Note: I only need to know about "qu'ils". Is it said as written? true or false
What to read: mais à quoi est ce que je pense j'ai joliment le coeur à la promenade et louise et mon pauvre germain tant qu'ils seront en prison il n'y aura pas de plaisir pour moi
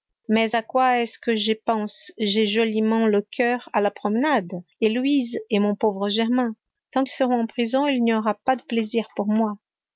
false